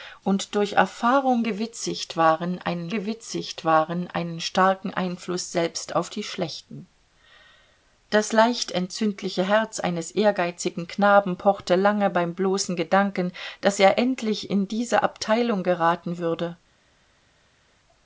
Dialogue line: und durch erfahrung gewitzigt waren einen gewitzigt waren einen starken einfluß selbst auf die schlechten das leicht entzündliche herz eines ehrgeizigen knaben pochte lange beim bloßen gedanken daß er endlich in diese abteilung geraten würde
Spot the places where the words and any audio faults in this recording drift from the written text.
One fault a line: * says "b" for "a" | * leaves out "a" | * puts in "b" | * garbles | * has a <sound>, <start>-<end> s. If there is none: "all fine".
all fine